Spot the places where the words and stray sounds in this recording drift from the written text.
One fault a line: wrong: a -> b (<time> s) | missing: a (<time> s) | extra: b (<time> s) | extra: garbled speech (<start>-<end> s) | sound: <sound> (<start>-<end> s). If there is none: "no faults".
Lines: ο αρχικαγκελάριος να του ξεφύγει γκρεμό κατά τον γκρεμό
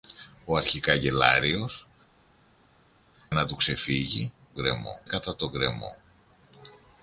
no faults